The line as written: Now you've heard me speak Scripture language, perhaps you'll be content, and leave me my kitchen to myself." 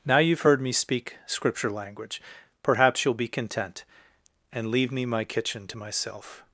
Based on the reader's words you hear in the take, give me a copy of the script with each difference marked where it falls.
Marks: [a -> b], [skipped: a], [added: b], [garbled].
Now you've heard me speak Scripture language, perhaps you'll be content, and leave me my kitchen to myself."